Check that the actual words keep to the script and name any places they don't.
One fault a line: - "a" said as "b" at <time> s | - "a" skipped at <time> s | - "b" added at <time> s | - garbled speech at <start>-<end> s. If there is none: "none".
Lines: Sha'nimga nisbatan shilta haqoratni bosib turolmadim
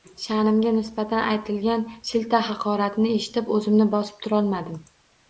- "aytilgan" added at 1.3 s
- "eshitib o‘zimni" added at 3.2 s